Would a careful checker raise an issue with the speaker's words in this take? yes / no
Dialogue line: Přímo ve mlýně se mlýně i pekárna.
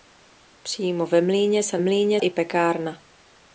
no